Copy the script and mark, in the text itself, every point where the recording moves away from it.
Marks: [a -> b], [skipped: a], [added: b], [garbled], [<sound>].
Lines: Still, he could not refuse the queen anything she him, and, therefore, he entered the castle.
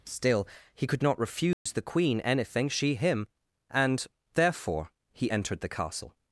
Still, he could not refuse [dropout] the queen anything she him, and, therefore, he entered the castle.